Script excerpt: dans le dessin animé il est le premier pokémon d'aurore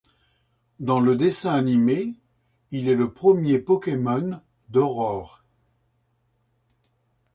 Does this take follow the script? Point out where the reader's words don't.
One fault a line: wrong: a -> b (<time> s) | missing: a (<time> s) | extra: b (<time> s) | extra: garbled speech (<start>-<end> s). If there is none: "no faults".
no faults